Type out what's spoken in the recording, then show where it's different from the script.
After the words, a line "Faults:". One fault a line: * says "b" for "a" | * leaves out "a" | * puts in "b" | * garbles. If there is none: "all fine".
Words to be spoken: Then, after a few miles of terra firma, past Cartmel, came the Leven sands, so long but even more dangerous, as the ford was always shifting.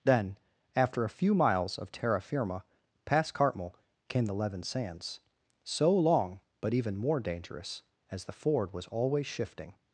Then, after a few miles of terra firma, past Cartmel, came the Leven sands, so long but even more dangerous, as the ford was always shifting.
Faults:
all fine